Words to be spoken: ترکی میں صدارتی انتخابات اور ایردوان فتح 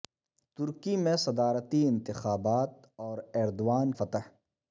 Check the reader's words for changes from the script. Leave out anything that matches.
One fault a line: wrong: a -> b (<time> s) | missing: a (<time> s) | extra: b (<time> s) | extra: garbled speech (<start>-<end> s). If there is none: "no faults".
no faults